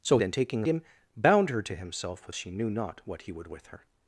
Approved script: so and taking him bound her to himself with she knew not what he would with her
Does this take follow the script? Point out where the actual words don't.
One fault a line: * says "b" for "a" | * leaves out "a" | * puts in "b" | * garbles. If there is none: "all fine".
all fine